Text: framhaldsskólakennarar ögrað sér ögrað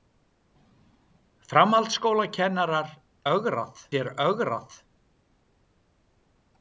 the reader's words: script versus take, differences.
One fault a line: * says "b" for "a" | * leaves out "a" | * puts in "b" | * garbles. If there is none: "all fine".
all fine